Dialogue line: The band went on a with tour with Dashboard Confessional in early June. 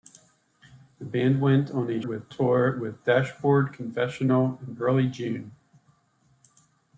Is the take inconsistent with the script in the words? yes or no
no